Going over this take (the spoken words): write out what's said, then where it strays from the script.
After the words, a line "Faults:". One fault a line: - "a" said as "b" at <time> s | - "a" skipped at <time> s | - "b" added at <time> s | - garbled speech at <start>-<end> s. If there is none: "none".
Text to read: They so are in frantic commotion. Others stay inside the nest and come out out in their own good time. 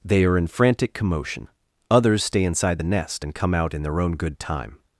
They are in frantic commotion. Others stay inside the nest and come out in their own good time.
Faults:
- "so" skipped at 0.2 s
- "out" skipped at 3.7 s